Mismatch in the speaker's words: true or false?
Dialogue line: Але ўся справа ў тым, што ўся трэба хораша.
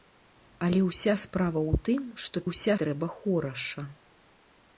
false